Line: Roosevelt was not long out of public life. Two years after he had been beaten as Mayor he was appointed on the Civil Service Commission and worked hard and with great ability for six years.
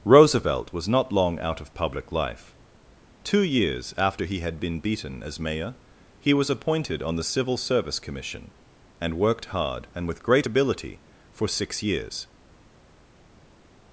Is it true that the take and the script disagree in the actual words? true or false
false